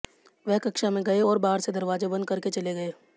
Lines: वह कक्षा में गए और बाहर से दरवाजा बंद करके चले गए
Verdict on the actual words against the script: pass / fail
pass